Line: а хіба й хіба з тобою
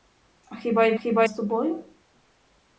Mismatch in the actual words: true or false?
false